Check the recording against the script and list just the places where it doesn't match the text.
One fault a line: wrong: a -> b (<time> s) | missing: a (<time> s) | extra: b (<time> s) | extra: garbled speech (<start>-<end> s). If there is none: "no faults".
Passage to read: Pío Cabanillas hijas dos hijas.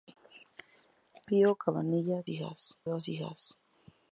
no faults